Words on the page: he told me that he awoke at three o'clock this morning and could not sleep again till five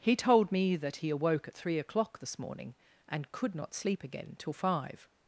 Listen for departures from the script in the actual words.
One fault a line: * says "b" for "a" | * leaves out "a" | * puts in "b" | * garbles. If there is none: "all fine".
all fine